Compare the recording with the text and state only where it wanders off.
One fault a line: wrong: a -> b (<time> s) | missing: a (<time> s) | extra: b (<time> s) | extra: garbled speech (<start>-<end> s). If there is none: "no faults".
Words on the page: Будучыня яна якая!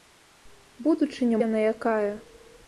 no faults